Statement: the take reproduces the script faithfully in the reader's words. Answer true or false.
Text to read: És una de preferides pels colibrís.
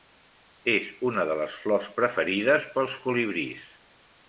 false